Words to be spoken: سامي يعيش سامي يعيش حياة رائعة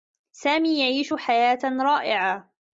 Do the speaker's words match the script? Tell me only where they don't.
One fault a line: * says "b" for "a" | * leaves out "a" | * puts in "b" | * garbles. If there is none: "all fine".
* leaves out "سامي يعيش"